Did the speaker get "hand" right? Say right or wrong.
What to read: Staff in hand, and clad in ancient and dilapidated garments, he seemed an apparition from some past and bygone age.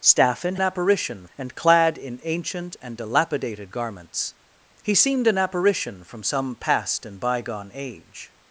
wrong